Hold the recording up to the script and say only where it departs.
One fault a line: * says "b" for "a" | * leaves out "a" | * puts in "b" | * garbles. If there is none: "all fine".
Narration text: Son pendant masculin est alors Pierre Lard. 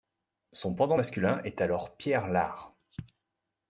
all fine